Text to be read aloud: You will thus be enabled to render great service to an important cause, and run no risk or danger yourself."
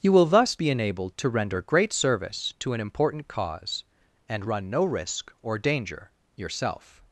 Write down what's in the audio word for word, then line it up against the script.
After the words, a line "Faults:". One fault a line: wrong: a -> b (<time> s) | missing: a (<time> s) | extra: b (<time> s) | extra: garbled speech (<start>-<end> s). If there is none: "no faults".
You will thus be enabled to render great service to an important cause, and run no risk or danger yourself."
Faults:
no faults